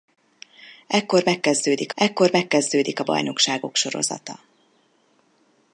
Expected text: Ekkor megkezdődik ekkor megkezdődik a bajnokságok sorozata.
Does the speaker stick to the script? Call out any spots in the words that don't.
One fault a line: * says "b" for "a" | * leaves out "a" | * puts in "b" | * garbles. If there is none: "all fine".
all fine